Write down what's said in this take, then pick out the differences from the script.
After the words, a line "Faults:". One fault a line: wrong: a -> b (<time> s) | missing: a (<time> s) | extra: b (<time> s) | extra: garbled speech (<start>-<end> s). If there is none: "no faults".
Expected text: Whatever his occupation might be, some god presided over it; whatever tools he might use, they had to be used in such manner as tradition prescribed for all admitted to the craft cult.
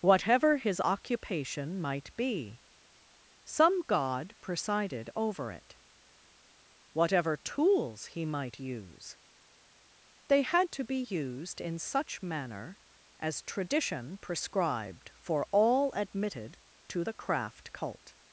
Whatever his occupation might be, some god presided over it; whatever tools he might use, they had to be used in such manner as tradition prescribed for all admitted to the craft cult.
Faults:
no faults